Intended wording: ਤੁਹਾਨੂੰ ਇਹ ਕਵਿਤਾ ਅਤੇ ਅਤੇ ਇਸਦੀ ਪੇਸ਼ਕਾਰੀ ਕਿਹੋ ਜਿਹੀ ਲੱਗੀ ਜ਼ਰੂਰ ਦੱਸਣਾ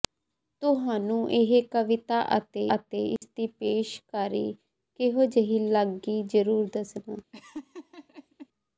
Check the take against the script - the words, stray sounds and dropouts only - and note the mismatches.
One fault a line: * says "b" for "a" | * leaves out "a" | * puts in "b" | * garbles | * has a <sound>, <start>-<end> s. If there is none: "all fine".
* has a dropout, 3.2-3.2 s
* has a laugh, 7.3-8.5 s